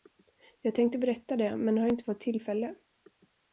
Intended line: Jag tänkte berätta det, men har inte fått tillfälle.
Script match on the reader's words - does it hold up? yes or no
yes